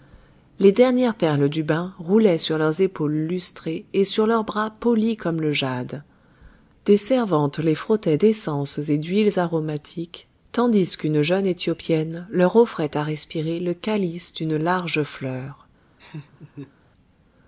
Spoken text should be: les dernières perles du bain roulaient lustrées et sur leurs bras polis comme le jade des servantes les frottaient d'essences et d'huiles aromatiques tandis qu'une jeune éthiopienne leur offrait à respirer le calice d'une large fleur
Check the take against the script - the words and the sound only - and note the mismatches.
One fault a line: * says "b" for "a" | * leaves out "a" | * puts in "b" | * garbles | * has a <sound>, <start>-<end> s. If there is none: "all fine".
* puts in "sur leurs épaules"
* has a laugh, 16.0-16.7 s